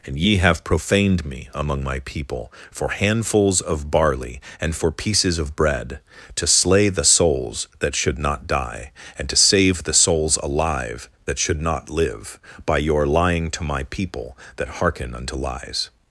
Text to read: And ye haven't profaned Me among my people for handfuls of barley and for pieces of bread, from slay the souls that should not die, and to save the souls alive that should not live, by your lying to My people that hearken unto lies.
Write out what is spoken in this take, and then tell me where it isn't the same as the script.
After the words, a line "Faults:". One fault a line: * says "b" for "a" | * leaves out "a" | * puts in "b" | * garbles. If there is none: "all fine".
And ye have profaned Me among my people for handfuls of barley and for pieces of bread, to slay the souls that should not die, and to save the souls alive that should not live, by your lying to My people that hearken unto lies.
Faults:
* says "have" for "haven't"
* says "to" for "from"